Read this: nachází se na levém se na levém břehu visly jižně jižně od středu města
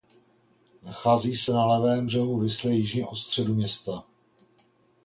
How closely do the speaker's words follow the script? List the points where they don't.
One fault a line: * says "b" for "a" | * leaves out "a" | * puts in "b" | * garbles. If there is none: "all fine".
* leaves out "se na levém"
* leaves out "jižně"